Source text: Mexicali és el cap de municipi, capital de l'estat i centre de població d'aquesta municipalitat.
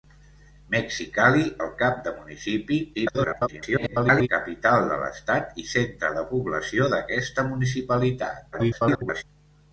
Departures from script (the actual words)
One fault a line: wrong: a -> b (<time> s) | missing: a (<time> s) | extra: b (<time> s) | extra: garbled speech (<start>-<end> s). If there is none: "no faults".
missing: és (1.4 s)
extra: garbled speech (2.9-4.3 s)
extra: garbled speech (8.5-9.2 s)